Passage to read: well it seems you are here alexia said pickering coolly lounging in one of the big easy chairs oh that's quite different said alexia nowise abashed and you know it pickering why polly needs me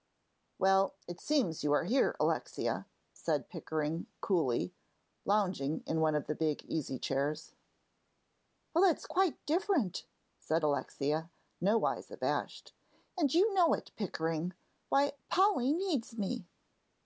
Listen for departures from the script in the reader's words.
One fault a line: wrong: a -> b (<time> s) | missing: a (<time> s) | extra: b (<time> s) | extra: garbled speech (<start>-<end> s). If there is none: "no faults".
no faults